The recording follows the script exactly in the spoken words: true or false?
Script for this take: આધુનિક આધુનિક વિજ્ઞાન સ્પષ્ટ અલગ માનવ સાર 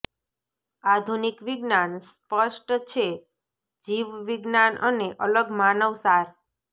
false